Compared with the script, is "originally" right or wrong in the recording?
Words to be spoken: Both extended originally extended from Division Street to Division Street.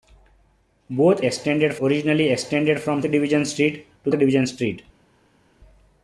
right